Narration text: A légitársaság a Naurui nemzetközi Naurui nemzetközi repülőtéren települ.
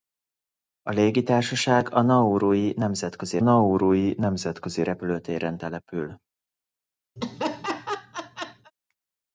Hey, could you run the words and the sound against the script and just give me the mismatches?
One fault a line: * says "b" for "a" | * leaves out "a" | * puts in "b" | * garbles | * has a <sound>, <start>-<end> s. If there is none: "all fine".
* has a laugh, 7.2-8.7 s